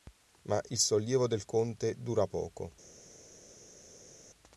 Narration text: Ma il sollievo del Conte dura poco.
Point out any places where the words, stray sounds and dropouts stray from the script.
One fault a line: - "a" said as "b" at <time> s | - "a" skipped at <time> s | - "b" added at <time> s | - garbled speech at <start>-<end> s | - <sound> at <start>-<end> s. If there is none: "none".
none